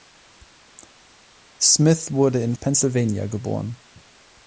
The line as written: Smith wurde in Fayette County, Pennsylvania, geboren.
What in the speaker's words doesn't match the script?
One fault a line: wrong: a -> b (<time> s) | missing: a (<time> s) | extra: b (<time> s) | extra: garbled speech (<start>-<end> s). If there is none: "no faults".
missing: Fayette County (2.5 s)